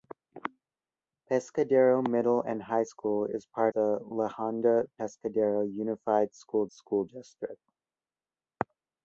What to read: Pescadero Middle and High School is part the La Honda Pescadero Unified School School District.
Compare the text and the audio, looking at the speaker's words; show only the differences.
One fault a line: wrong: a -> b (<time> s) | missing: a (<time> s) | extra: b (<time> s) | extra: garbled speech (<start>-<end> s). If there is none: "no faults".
no faults